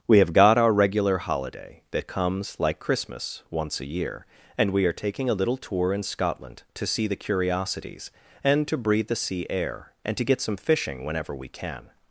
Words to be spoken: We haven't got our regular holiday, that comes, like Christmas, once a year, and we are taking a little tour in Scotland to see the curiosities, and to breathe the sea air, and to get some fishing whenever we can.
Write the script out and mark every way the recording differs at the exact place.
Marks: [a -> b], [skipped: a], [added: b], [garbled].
We [haven't -> have] got our regular holiday, that comes, like Christmas, once a year, and we are taking a little tour in Scotland to see the curiosities, and to breathe the sea air, and to get some fishing whenever we can.